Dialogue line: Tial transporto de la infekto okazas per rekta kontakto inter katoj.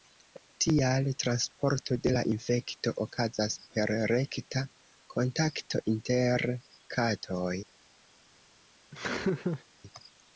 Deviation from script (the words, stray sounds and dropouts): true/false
true